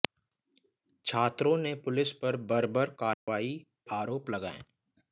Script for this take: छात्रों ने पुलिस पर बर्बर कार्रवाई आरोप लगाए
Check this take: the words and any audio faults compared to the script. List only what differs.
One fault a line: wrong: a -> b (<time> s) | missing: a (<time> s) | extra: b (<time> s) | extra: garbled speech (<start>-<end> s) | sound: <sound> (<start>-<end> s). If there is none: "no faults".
sound: dropout (3.1-3.3 s)